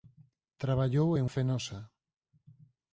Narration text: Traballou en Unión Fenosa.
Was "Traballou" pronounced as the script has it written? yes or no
yes